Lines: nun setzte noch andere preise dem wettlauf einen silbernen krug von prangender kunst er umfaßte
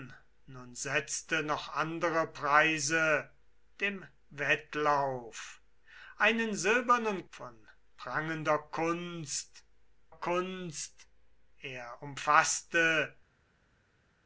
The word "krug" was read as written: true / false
false